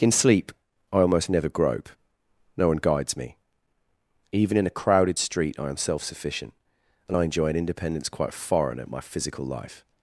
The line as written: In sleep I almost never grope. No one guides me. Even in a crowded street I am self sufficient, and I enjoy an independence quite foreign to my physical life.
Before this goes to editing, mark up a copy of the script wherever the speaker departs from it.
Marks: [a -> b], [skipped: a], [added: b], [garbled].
In sleep I almost never grope. No one guides me. Even in a crowded street I am self sufficient, and I enjoy an independence quite foreign [to -> at] my physical life.